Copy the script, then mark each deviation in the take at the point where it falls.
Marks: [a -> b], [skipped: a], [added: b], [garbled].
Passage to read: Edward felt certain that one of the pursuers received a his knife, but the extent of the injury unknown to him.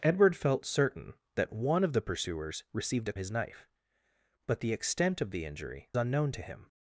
Edward felt certain that one of the pursuers received a his knife, but the extent of the injury unknown to him.